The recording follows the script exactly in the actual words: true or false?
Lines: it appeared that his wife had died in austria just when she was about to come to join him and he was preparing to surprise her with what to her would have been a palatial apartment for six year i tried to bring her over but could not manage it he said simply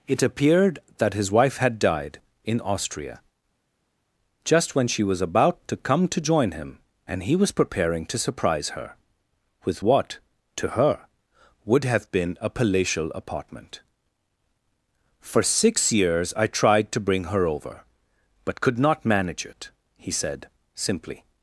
false